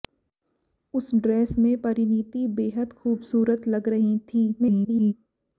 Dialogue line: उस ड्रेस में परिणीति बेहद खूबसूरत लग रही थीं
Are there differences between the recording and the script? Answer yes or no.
yes